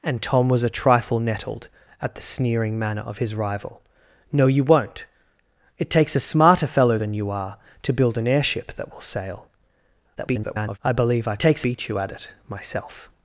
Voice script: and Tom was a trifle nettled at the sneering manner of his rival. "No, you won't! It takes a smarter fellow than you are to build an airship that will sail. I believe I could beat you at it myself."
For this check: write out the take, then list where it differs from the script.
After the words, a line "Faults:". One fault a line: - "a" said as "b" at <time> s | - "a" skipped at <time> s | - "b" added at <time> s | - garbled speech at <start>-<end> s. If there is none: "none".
and Tom was a trifle nettled at the sneering manner of his rival. "No, you won't! It takes a smarter fellow than you are to build an airship that will sail. [garbled] I believe I takes beat you at it myself."
Faults:
- garbled speech at 10.2-10.8 s
- "could" said as "takes" at 11.4 s